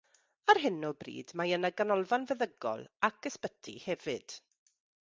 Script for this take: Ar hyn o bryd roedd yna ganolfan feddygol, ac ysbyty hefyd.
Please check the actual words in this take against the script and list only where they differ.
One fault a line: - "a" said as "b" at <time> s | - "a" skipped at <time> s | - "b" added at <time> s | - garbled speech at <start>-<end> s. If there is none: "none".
- "roedd" said as "mae" at 1.4 s